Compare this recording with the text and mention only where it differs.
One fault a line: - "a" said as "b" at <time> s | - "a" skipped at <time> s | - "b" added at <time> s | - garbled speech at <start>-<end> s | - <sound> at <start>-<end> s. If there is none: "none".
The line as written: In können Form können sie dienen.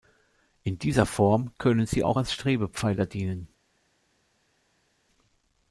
- "können" said as "dieser" at 0.8 s
- "auch als Strebepfeiler" added at 2.0 s